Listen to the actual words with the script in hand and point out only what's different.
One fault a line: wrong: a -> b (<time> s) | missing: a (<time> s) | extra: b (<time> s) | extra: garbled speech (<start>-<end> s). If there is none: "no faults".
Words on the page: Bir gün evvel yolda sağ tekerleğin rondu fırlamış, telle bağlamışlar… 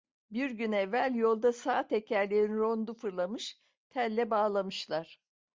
no faults